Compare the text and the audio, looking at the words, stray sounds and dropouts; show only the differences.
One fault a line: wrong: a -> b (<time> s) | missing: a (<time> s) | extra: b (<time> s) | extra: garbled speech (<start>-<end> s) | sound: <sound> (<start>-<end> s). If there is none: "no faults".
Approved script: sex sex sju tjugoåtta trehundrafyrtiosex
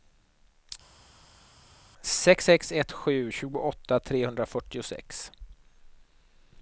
extra: ett (2.7 s)